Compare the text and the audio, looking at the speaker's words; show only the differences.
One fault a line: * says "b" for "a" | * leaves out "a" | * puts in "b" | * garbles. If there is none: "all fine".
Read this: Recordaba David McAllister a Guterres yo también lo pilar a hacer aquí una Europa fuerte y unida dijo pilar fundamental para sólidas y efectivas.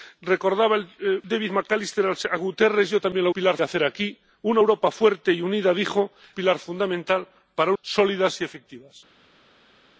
all fine